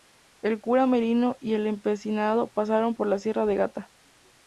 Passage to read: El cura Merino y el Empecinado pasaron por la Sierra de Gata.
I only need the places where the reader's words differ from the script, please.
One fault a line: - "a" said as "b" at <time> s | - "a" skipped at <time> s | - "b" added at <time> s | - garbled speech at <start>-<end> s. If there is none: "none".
none